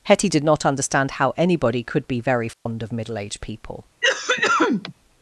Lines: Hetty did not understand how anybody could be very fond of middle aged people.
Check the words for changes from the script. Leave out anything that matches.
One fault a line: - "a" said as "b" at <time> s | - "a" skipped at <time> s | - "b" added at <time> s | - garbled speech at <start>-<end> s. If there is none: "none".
none